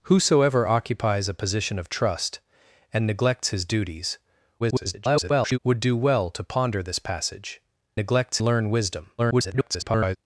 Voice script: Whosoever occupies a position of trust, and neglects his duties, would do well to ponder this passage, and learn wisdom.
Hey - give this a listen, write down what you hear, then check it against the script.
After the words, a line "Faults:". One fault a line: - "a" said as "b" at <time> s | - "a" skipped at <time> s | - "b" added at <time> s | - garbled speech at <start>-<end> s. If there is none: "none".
Whosoever occupies a position of trust, and neglects his duties, [garbled] would do well to ponder this passage, neglects learn wisdom. [garbled]
Faults:
- garbled speech at 4.6-5.6 s
- "and" said as "neglects" at 7.9 s
- garbled speech at 9.2-10.2 s